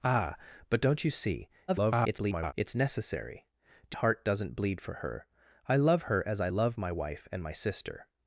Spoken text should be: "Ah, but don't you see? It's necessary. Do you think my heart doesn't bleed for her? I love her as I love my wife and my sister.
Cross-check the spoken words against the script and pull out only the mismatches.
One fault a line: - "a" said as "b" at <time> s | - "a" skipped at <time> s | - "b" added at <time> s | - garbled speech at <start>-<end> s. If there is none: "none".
- garbled speech at 1.7-2.5 s
- "you think my" skipped at 4.0 s